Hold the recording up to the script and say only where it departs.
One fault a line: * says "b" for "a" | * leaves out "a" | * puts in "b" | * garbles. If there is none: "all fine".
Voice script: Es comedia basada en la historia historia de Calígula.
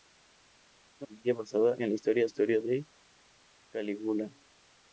all fine